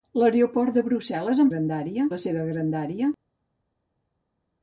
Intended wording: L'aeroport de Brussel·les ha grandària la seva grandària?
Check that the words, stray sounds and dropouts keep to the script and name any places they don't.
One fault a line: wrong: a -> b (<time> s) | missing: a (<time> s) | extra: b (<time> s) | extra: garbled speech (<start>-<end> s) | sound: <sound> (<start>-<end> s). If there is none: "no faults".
no faults